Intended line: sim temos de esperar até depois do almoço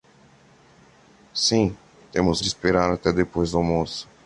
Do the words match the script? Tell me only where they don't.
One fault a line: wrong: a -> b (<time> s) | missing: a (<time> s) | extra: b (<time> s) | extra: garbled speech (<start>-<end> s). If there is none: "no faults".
no faults